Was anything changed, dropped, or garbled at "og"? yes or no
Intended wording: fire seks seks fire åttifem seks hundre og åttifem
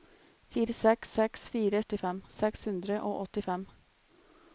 no